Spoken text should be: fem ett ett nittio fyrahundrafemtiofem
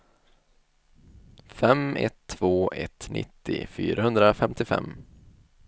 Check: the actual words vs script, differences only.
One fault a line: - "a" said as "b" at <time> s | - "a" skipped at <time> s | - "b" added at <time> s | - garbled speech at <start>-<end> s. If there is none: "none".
- "två" added at 2.3 s